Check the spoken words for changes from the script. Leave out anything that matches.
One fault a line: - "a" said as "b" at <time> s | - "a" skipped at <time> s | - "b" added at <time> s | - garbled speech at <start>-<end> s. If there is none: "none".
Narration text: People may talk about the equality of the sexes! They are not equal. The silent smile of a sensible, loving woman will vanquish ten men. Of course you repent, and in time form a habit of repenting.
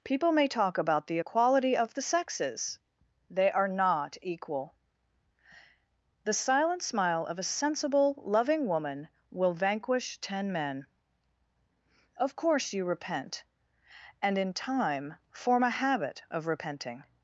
none